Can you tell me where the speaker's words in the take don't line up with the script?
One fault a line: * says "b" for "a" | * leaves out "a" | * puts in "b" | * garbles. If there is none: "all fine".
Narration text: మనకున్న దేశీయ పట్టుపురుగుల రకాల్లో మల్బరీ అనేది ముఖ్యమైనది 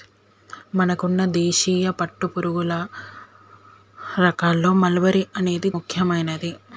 all fine